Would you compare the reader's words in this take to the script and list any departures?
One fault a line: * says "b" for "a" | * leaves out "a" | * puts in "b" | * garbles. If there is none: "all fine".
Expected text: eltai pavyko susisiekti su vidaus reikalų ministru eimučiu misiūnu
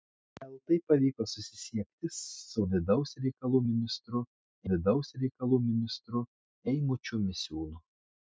* puts in "vidaus reikalų ministru"